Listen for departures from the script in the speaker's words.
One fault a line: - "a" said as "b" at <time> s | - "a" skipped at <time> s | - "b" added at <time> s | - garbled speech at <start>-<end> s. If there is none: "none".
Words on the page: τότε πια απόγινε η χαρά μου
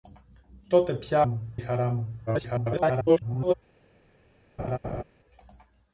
- "απόγινε" said as "μου" at 1.2 s
- garbled speech at 2.3-3.5 s